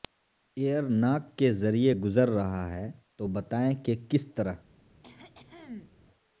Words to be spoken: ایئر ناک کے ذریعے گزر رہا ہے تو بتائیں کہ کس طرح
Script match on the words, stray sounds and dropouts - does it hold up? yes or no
no